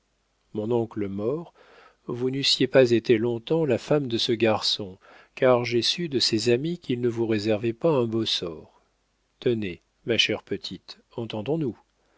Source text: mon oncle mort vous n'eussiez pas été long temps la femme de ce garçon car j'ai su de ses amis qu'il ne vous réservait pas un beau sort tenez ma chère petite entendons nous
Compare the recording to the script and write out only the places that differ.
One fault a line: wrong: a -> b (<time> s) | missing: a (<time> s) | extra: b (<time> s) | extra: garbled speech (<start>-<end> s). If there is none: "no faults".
no faults